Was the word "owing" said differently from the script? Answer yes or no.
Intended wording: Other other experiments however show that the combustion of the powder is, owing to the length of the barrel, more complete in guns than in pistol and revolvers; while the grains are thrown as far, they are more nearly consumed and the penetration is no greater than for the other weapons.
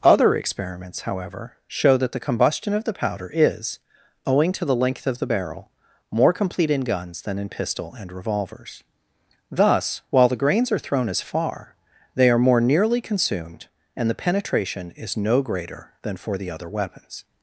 no